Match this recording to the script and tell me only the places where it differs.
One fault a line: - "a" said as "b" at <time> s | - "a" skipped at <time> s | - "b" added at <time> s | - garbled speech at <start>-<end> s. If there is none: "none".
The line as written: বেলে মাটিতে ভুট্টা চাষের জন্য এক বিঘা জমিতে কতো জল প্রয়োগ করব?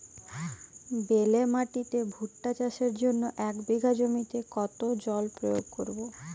none